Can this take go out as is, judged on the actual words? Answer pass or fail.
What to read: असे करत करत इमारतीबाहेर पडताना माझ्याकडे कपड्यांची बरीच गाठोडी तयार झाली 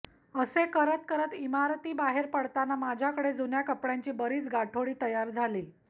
fail